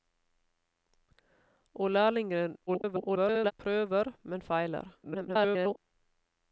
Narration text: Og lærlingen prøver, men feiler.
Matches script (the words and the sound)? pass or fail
fail